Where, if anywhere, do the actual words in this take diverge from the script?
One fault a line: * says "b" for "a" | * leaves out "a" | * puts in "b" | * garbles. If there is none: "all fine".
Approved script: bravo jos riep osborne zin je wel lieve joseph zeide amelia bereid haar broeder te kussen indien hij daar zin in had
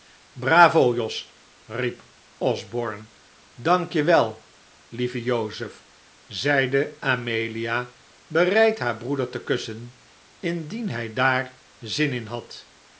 * says "dank" for "zin"